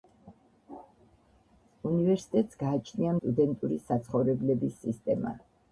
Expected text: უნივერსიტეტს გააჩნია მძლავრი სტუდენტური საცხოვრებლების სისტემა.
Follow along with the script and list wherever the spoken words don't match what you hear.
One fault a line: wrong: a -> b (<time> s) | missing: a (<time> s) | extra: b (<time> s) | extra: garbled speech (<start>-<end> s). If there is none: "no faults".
missing: მძლავრი (3.1 s)